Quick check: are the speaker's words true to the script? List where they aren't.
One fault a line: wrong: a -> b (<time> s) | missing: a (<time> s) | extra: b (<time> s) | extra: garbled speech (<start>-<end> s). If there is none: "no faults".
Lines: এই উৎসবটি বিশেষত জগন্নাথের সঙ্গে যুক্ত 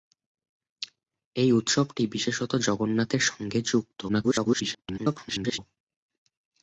extra: garbled speech (4.1-5.6 s)